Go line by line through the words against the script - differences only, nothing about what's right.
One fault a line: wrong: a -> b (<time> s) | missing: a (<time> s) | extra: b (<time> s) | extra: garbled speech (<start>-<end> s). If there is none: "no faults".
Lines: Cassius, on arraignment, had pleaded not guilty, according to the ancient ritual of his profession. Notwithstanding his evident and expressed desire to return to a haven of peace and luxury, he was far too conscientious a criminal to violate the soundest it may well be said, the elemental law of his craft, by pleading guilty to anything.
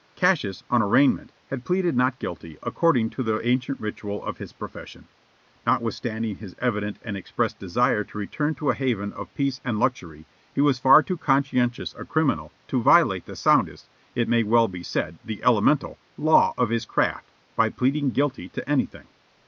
no faults